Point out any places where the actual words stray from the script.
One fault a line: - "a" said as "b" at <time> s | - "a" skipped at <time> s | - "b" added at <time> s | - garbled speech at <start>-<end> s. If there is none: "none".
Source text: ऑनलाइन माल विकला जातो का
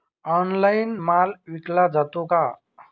none